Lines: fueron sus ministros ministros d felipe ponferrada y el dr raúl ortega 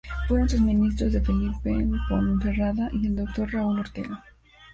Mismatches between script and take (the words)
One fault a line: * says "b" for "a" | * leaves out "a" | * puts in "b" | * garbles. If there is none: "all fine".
* leaves out "ministros"